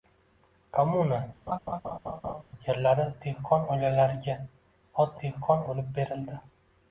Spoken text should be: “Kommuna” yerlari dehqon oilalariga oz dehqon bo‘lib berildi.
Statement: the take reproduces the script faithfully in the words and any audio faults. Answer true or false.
false